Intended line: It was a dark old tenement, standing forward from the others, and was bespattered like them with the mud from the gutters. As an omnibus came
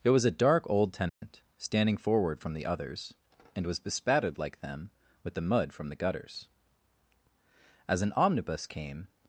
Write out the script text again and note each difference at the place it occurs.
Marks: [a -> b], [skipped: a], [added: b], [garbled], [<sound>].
It was a dark old tenement, [dropout] standing forward from the others, and was bespattered like them with the mud from the gutters. As an omnibus came